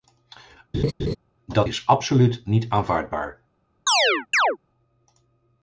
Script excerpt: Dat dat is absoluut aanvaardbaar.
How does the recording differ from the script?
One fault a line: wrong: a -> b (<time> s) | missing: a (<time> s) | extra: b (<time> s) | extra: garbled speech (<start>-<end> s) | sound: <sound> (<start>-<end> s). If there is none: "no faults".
sound: laugh (0.7-1.2 s)
missing: dat (1.7 s)
extra: niet (2.4 s)
sound: chirp (3.9-4.6 s)